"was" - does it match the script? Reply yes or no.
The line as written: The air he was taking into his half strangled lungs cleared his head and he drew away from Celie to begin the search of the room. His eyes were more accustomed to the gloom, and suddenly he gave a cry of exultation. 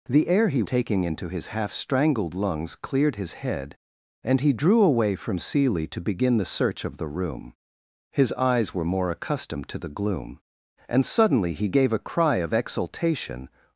no